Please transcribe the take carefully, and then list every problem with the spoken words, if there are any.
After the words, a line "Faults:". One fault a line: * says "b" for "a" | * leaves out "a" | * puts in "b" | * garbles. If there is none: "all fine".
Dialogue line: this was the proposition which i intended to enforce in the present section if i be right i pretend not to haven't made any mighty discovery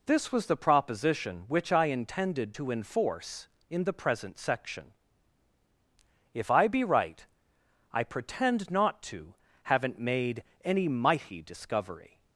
this was the proposition which i intended to enforce in the present section if i be right i pretend not to haven't made any mighty discovery
Faults:
all fine